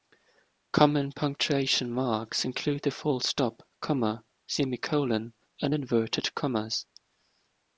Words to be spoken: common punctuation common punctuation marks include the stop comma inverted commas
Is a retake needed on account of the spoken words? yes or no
yes